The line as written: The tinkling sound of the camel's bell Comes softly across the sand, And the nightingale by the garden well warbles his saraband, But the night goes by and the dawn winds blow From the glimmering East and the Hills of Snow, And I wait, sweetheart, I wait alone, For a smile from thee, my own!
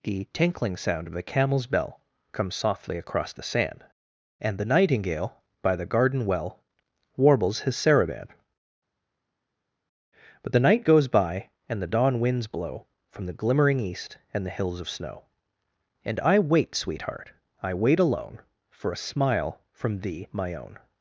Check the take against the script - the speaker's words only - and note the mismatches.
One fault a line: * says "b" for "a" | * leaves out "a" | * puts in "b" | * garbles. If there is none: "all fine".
all fine